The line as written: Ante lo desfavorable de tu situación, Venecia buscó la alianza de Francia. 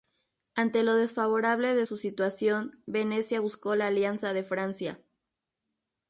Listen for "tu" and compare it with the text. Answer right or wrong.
wrong